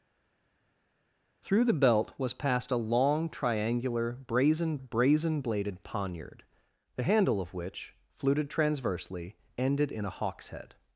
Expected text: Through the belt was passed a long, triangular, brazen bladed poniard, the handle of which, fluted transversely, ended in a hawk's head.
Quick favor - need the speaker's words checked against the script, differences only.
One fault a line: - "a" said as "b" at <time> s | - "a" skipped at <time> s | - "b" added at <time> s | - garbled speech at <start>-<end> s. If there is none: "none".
- "brazen" added at 4.8 s